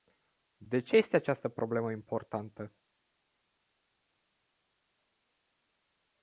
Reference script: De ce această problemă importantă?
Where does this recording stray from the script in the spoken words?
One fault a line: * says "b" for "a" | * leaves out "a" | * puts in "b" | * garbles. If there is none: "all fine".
* puts in "este"